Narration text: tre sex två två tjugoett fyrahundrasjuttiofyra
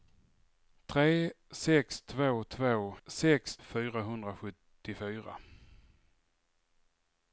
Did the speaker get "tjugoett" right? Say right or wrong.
wrong